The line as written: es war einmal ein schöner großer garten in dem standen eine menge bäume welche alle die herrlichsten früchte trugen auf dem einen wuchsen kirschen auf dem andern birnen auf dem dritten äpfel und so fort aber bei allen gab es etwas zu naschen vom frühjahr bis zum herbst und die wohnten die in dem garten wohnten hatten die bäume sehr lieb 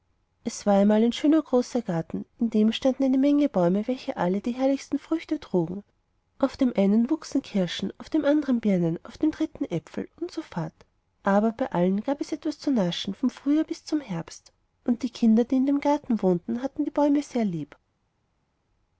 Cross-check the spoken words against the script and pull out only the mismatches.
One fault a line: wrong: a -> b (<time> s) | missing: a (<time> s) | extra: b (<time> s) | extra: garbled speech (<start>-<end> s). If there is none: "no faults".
wrong: wohnten -> kinder (15.1 s)